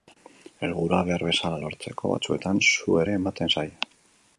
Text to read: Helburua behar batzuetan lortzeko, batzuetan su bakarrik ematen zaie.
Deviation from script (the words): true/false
true